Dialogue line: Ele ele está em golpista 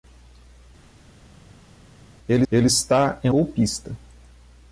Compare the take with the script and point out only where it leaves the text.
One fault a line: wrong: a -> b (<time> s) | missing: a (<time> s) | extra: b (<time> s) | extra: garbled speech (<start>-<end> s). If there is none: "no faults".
no faults